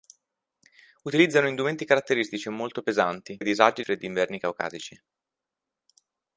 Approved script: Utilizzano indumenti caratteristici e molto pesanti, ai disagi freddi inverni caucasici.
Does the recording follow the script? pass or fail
pass